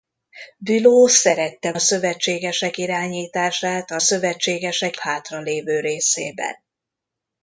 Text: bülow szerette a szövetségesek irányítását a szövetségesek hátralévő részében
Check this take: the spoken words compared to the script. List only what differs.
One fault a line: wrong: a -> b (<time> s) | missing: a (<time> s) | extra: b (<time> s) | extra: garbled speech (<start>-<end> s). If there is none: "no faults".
no faults